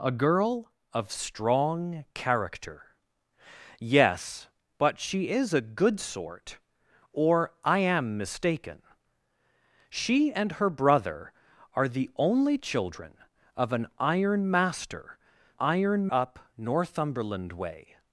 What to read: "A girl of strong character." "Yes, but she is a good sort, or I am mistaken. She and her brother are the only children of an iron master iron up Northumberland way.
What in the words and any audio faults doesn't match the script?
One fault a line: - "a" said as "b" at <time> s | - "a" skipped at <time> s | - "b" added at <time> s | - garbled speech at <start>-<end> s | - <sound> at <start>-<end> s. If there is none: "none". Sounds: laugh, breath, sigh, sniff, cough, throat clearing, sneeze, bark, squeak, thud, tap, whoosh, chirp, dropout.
none